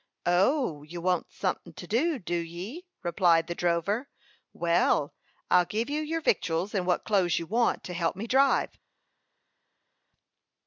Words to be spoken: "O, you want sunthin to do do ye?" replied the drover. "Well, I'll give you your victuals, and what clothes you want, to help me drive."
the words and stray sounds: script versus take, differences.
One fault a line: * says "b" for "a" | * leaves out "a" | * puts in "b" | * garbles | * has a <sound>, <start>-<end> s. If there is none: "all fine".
all fine